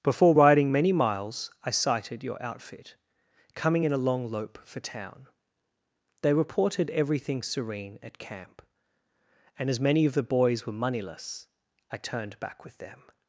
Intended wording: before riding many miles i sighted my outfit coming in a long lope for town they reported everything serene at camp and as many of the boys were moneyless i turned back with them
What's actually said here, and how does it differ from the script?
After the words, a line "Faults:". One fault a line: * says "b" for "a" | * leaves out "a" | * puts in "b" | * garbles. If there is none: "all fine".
before riding many miles i sighted your outfit coming in a long lope for town they reported everything serene at camp and as many of the boys were moneyless i turned back with them
Faults:
* says "your" for "my"